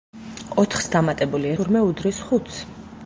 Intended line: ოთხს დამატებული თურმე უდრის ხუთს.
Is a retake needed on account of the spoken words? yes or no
no